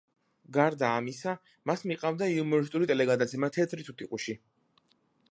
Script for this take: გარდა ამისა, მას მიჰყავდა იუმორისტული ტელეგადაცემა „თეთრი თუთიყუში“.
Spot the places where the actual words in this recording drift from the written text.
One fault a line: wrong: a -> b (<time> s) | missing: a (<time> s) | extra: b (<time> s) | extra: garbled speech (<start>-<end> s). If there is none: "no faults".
no faults